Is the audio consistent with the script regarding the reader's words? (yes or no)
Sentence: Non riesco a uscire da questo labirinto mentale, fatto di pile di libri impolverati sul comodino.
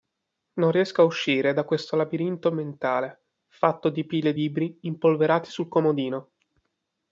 no